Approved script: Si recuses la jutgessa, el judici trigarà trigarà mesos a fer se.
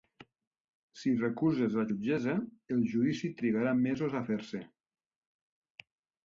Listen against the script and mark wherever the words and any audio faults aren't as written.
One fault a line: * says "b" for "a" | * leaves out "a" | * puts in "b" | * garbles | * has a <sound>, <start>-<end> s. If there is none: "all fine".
* leaves out "trigarà"